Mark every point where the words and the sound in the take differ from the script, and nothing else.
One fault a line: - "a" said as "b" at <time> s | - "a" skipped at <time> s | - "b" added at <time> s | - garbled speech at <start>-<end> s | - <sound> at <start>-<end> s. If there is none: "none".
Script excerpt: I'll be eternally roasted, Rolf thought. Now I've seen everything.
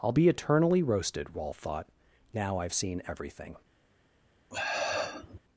- sniff at 4.5-5.4 s